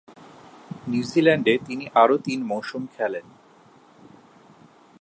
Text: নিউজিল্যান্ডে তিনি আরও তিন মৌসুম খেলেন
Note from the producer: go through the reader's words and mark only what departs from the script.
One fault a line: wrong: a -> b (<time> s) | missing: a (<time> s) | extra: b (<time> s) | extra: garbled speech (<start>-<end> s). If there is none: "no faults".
no faults